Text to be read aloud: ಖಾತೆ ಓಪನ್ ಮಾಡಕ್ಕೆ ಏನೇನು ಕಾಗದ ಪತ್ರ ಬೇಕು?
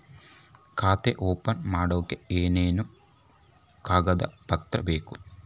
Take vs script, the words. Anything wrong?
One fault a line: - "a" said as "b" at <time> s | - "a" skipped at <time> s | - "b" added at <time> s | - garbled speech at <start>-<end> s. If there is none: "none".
none